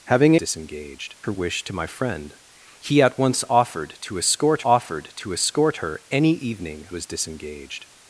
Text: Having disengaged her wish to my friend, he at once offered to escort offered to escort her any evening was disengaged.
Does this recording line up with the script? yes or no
yes